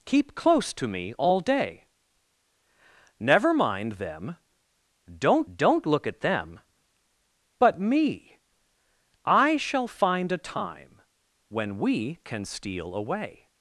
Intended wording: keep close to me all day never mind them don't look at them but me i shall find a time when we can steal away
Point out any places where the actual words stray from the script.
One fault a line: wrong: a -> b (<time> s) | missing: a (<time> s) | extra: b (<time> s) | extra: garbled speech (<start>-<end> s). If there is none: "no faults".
extra: don't (5.5 s)